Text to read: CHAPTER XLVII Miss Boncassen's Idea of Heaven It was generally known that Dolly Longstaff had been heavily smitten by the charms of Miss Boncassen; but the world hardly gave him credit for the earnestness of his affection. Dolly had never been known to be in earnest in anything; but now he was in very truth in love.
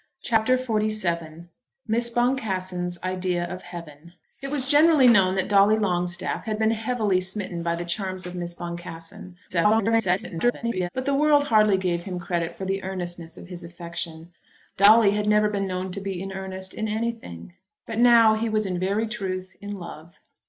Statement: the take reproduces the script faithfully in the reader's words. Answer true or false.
false